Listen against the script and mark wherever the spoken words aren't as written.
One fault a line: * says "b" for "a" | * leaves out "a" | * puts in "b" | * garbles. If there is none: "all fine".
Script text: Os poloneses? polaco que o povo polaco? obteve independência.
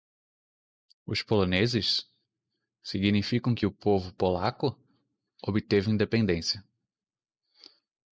* says "significam" for "polaco"